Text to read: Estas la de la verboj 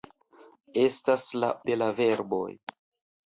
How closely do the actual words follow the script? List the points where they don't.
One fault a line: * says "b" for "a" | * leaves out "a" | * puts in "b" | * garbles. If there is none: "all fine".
all fine